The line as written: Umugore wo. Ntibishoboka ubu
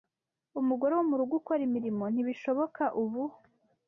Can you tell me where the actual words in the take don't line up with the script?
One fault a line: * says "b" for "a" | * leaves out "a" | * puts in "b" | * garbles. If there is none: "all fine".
* puts in "murugo ukora imirimo"